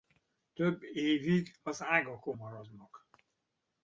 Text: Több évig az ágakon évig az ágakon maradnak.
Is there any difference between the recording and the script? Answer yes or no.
yes